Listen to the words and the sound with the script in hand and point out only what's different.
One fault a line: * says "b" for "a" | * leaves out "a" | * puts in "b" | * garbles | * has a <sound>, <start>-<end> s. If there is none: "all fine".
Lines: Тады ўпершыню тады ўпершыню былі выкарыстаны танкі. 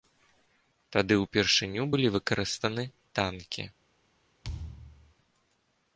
* leaves out "тады ўпершыню"
* has a thud, 4.4-5.1 s